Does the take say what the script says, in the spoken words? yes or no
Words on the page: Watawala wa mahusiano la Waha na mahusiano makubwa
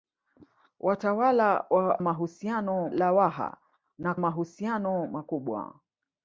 yes